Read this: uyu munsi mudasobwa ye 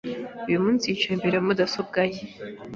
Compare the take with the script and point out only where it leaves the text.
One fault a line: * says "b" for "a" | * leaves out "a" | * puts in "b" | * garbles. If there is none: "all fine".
* puts in "yicaye imbere ya"